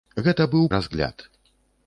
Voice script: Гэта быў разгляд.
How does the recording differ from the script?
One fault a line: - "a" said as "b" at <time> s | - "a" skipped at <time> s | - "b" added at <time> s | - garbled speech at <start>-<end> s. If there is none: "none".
none